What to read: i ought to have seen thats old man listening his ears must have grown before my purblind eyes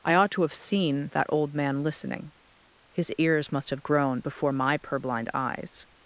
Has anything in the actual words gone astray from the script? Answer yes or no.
yes